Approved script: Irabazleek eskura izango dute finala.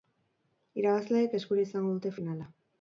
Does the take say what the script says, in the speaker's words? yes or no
yes